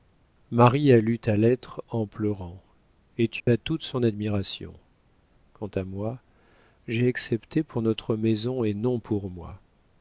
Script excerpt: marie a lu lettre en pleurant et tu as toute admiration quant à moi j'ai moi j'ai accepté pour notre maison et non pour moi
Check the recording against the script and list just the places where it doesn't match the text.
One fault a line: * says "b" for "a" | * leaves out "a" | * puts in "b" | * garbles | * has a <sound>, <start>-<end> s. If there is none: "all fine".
* puts in "ta"
* has a dropout, 3.4-3.5 s
* puts in "son"
* leaves out "moi j'ai"